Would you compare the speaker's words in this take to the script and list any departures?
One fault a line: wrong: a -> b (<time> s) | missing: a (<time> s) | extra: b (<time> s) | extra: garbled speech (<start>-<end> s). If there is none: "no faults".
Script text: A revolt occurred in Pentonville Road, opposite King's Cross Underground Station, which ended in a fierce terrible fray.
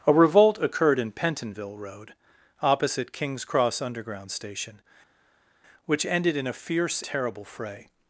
no faults